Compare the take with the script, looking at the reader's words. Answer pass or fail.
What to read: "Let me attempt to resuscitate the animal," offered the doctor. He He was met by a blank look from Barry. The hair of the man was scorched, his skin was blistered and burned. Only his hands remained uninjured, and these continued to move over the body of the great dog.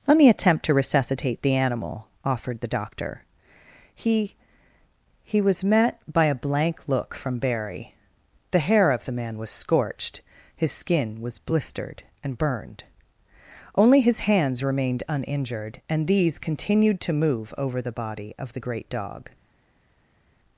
pass